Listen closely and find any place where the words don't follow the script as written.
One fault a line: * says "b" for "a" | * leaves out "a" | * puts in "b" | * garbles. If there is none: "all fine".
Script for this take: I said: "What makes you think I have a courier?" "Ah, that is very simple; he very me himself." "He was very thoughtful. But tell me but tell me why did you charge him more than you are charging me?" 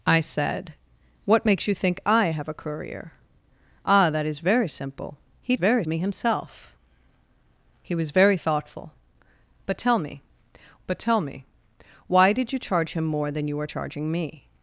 all fine